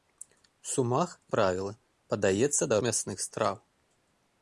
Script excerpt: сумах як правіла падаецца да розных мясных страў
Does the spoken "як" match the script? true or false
false